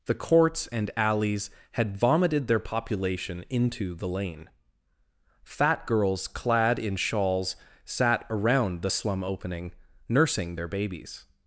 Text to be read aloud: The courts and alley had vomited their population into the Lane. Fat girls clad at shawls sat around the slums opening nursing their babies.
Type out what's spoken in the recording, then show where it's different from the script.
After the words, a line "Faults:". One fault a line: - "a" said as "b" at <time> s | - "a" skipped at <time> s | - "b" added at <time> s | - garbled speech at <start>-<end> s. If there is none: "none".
The courts and alleys had vomited their population into the Lane. Fat girls clad in shawls sat around the slum opening nursing their babies.
Faults:
- "alley" said as "alleys" at 0.9 s
- "at" said as "in" at 6.8 s
- "slums" said as "slum" at 8.9 s